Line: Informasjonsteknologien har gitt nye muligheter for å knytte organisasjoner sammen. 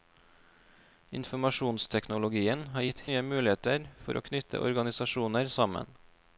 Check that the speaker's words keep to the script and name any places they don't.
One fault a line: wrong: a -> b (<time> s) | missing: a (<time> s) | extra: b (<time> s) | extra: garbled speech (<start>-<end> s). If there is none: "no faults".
no faults